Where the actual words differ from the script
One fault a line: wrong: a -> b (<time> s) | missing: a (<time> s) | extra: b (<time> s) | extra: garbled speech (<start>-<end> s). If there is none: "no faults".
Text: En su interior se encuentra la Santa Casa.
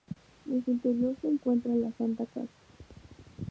no faults